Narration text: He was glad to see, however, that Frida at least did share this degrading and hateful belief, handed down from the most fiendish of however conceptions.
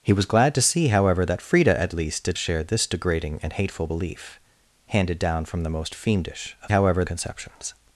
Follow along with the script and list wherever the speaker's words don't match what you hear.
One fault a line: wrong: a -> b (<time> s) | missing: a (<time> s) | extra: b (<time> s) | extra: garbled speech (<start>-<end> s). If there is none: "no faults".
no faults